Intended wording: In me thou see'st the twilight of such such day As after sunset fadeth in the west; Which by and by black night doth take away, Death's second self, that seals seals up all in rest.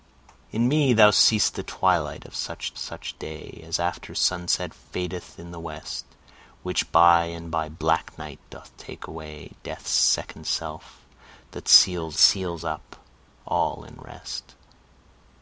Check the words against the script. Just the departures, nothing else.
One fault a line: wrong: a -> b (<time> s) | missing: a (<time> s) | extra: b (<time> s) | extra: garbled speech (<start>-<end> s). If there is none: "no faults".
no faults